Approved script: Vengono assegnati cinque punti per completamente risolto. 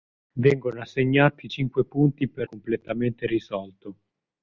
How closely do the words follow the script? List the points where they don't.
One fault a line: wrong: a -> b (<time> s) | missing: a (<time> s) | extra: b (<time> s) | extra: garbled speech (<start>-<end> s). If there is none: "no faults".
no faults